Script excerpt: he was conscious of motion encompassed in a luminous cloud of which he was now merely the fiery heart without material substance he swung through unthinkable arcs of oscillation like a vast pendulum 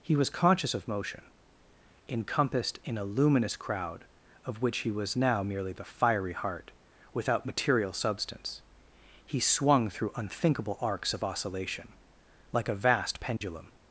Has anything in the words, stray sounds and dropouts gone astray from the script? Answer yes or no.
yes